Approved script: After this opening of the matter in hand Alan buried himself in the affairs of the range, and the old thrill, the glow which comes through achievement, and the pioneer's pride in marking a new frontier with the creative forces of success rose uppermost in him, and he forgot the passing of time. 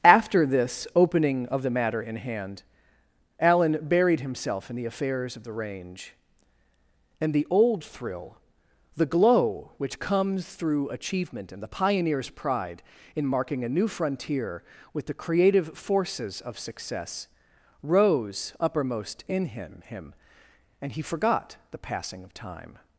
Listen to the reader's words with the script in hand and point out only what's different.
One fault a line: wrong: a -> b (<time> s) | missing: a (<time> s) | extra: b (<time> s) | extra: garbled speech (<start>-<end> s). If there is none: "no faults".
extra: him (19.9 s)